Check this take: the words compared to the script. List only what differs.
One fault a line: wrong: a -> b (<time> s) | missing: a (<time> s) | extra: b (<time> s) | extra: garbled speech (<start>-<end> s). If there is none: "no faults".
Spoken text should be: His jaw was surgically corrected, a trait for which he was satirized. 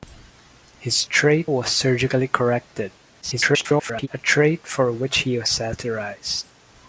wrong: jaw -> trait (1.0 s)
extra: garbled speech (3.2-4.1 s)